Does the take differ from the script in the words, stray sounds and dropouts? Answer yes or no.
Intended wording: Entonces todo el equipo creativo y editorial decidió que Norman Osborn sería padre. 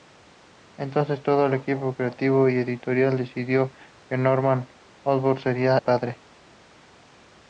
no